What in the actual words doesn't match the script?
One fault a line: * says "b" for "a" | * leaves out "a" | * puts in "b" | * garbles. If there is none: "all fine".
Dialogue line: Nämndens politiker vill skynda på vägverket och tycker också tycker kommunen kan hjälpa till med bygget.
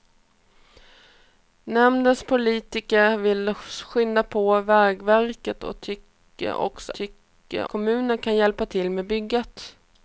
all fine